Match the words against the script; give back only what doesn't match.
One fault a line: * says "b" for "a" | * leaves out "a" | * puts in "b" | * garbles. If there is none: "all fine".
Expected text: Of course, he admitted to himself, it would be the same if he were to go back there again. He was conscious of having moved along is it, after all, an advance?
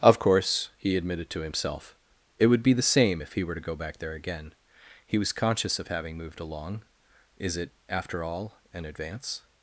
all fine